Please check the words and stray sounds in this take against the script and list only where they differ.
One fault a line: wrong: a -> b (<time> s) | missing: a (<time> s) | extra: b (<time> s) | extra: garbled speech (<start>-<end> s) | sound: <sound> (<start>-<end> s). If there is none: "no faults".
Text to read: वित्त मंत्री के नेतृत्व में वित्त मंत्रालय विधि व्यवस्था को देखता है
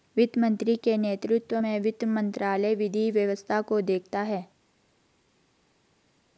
no faults